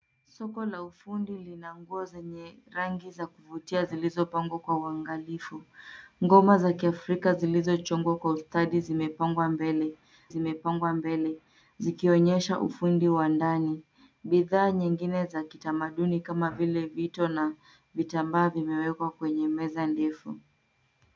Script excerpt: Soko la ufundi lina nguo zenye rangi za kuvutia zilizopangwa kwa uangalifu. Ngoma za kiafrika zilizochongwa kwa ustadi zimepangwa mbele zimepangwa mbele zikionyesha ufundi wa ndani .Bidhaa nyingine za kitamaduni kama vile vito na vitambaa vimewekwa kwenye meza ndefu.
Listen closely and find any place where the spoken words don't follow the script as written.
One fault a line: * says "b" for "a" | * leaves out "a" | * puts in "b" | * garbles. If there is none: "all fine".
all fine